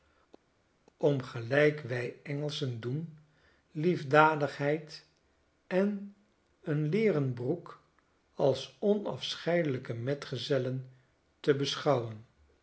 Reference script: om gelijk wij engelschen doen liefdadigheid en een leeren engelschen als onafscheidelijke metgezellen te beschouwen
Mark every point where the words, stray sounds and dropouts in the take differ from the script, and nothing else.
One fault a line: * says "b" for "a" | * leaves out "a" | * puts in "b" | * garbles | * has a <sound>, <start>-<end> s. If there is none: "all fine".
* says "broek" for "engelschen"